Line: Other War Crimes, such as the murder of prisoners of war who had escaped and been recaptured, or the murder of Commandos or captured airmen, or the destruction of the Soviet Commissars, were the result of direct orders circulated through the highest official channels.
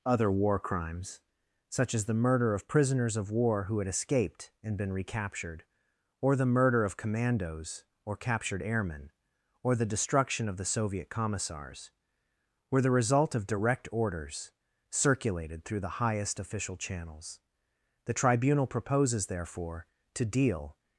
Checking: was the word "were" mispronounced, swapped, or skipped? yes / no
no